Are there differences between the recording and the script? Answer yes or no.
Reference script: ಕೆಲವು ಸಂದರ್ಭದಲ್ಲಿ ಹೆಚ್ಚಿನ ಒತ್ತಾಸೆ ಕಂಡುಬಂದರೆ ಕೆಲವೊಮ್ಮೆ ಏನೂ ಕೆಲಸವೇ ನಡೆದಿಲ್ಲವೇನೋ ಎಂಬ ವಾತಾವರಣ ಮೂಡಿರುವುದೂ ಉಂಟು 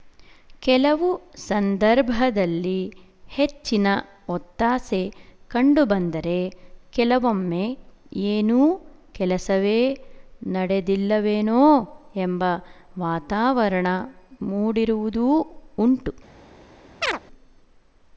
no